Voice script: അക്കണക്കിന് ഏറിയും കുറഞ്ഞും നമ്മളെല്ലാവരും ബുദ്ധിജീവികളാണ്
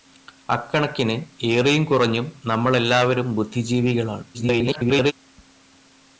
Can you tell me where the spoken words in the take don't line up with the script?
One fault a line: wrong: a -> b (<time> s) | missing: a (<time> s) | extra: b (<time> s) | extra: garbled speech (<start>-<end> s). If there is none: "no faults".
extra: garbled speech (4.3-5.1 s)